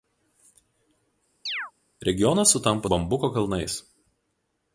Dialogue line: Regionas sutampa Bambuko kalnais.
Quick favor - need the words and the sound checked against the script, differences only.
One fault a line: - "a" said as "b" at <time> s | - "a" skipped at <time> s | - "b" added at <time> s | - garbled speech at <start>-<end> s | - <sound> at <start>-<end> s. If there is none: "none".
- chirp at 1.5-1.7 s